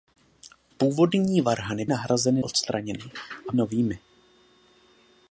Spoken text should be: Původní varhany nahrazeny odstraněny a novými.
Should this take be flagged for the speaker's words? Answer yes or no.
no